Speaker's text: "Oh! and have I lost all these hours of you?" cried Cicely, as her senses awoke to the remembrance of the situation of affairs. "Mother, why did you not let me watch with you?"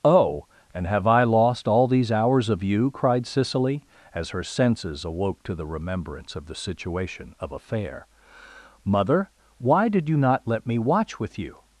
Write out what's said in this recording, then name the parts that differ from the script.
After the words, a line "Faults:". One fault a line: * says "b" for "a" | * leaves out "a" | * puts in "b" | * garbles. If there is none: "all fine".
"Oh! and have I lost all these hours of you?" cried Cicely, as her senses awoke to the remembrance of the situation of affair. "Mother, why did you not let me watch with you?"
Faults:
* says "affair" for "affairs"